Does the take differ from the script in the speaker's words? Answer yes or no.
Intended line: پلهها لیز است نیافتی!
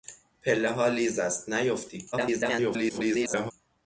yes